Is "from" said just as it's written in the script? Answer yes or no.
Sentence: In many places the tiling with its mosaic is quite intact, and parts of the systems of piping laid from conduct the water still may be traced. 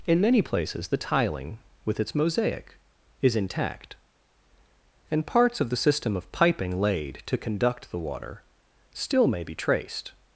no